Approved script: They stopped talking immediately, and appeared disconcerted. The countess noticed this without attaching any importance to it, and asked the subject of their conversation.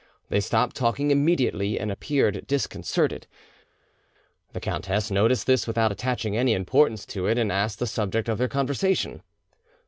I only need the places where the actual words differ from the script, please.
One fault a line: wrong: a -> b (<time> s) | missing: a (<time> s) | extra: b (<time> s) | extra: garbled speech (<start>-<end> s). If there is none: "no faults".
no faults